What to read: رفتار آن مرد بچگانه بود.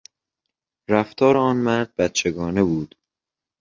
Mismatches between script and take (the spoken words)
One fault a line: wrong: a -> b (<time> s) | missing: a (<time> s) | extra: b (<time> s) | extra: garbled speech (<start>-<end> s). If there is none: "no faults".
no faults